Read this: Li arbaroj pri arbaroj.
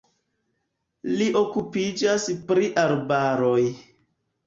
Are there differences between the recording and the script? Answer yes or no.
yes